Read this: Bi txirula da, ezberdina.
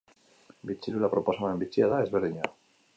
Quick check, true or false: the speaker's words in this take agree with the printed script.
false